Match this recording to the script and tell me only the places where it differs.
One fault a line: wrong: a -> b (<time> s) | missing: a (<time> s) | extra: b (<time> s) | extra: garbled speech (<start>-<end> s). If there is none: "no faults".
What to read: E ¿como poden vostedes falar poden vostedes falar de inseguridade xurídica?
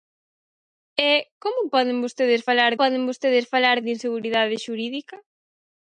no faults